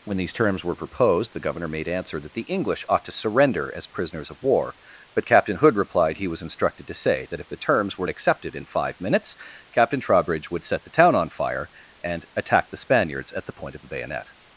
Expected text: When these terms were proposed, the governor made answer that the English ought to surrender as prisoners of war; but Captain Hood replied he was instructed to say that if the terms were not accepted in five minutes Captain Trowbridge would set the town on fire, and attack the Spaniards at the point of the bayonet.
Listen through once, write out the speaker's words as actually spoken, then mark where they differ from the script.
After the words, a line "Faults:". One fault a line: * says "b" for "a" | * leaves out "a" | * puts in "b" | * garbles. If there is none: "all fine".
When these terms were proposed, the governor made answer that the English ought to surrender as prisoners of war; but Captain Hood replied he was instructed to say that if the terms were accepted in five minutes Captain Trowbridge would set the town on fire, and attack the Spaniards at the point of the bayonet.
Faults:
* leaves out "not"